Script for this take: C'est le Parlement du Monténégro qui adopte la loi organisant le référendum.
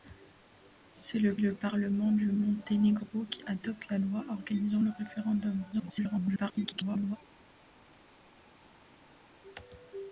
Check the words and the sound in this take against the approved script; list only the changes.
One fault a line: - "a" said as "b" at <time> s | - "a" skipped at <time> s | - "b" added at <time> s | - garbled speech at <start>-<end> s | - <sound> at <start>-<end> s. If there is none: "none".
- "le" added at 1.4 s
- garbled speech at 5.7-7.2 s